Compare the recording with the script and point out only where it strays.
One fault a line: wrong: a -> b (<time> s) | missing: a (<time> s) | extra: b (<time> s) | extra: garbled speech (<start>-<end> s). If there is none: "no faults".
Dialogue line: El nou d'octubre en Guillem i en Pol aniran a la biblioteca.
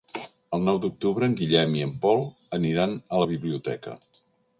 no faults